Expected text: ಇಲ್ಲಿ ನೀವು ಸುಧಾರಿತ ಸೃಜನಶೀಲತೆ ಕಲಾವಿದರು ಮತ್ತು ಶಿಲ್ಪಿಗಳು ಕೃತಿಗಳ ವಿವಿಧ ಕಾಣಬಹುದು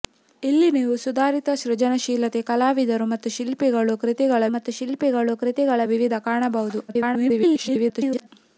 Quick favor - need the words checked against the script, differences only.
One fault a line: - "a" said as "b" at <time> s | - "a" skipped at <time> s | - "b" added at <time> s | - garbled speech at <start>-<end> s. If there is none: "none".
- "ಮತ್ತು ಶಿಲ್ಪಿಗಳು ಕೃತಿಗಳ" added at 4.5 s
- garbled speech at 6.9-8.3 s